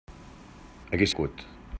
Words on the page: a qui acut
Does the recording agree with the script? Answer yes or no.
yes